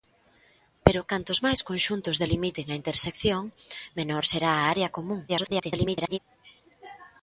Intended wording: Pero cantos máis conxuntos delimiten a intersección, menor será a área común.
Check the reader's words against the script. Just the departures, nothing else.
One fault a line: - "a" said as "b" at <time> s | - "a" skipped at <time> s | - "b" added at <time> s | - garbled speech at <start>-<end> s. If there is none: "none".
- garbled speech at 5.3-6.2 s